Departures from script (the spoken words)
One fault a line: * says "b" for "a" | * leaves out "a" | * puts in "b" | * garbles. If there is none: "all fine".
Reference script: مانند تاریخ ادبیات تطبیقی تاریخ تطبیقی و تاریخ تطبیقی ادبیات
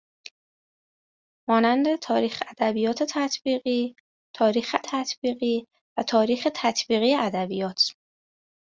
all fine